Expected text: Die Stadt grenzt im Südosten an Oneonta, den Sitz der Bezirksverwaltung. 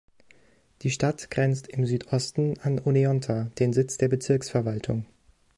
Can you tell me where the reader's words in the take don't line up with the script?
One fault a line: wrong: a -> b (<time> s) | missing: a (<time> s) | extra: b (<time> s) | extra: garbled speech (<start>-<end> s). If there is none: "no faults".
no faults